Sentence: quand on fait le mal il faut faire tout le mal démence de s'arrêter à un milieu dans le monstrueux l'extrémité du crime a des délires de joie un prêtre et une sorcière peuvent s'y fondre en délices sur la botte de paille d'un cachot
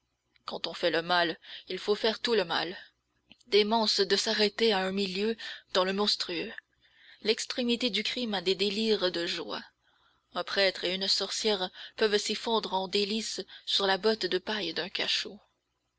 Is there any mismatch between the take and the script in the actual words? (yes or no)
no